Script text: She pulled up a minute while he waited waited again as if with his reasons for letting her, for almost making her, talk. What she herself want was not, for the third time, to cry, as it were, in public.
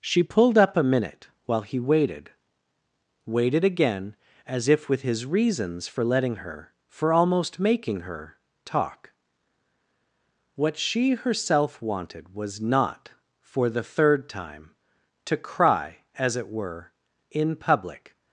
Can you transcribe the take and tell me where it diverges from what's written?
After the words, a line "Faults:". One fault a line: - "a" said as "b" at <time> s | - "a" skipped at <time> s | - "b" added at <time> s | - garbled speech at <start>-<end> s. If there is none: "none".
She pulled up a minute while he waited waited again as if with his reasons for letting her, for almost making her, talk. What she herself wanted was not, for the third time, to cry, as it were, in public.
Faults:
- "want" said as "wanted" at 11.8 s